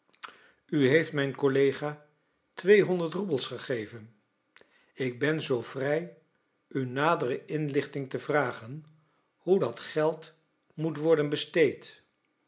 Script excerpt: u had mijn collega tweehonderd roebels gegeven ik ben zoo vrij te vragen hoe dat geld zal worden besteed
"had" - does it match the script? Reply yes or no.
no